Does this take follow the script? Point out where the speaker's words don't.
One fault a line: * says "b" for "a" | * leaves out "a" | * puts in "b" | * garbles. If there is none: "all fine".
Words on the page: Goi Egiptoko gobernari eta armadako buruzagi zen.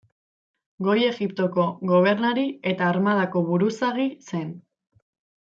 all fine